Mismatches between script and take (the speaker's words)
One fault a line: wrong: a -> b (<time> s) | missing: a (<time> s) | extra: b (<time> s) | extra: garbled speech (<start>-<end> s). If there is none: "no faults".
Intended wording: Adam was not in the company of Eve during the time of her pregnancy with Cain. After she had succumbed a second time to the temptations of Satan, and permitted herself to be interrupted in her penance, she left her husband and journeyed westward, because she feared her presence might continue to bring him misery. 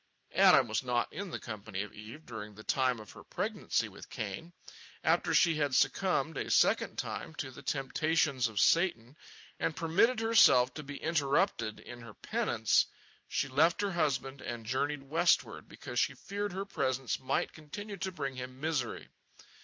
no faults